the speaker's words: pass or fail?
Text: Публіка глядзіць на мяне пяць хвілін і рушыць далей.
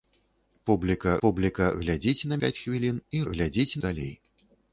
fail